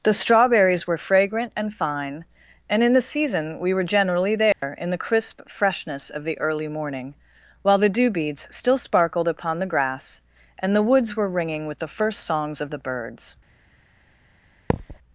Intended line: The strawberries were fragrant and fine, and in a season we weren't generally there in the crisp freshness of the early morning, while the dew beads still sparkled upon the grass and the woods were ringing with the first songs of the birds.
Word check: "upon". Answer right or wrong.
right